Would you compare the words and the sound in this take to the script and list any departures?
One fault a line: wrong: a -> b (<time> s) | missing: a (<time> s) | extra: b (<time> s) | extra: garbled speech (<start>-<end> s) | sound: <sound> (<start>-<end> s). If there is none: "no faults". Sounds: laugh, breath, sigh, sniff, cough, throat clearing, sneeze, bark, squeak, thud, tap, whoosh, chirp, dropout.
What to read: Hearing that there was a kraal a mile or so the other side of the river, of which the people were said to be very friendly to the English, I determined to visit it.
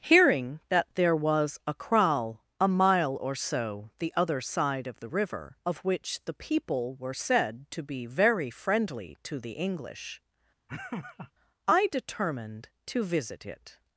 sound: laugh (10.7-11.3 s)